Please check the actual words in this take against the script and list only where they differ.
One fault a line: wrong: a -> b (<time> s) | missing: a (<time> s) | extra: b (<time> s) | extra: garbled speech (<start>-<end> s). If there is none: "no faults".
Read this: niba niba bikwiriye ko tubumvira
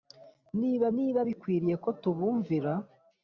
no faults